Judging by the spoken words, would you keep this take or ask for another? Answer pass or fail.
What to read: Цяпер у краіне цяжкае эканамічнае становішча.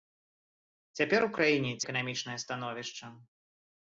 fail